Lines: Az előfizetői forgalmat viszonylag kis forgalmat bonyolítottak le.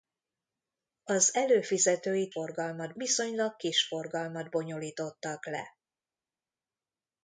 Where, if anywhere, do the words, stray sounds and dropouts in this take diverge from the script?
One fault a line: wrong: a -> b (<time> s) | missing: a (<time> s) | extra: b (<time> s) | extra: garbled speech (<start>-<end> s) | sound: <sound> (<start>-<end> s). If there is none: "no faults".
no faults